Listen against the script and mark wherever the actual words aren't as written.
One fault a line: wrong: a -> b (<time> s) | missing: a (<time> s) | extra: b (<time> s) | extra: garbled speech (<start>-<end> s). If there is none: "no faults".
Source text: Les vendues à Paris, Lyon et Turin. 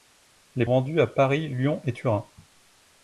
no faults